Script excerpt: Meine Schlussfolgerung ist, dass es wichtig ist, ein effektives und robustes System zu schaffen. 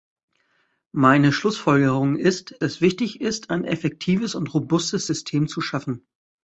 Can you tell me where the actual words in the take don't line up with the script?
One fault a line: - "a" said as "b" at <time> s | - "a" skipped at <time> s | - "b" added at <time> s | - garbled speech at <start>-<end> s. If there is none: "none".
- "dass" skipped at 2.5 s